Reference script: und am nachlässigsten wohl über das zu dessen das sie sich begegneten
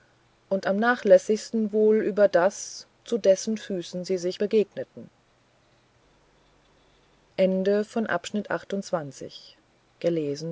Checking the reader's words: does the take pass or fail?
fail